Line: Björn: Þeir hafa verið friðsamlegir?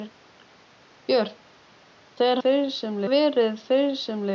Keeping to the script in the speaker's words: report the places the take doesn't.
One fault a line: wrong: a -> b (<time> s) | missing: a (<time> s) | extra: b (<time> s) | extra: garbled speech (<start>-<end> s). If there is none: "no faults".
wrong: hafa -> friðsamlegir (2.4 s)